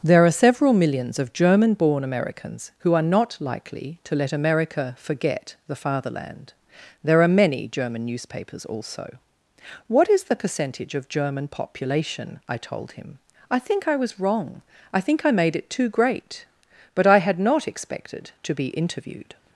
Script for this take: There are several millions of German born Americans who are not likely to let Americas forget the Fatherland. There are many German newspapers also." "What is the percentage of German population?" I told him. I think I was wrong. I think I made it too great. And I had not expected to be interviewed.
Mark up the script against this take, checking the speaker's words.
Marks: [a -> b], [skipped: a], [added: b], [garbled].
There are several millions of German born Americans who are not likely to let [Americas -> America] forget the Fatherland. There are many German newspapers also." "What is the percentage of German population?" I told him. I think I was wrong. I think I made it too great. [And -> But] I had not expected to be interviewed.